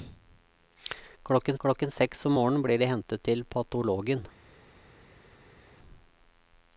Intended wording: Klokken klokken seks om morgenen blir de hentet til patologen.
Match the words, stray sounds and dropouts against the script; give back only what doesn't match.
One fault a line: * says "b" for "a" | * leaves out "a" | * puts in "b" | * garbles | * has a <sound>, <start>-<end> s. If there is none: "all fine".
all fine